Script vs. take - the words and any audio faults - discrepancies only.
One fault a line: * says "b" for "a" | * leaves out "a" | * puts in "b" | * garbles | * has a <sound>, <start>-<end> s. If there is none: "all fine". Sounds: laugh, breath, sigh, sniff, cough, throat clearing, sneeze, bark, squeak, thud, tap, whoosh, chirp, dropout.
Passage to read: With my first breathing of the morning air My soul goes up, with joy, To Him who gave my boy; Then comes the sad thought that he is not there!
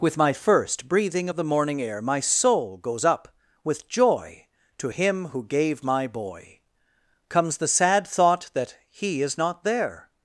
* leaves out "Then"